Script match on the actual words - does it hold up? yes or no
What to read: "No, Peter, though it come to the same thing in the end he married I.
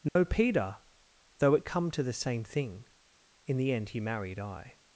yes